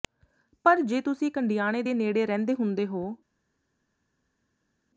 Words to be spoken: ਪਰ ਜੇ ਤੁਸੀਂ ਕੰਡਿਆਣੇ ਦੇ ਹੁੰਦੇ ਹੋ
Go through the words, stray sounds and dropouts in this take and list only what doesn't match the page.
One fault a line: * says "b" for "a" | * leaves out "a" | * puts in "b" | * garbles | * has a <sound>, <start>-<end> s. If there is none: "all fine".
* puts in "ਨੇੜੇ ਰਹਿੰਦੇ"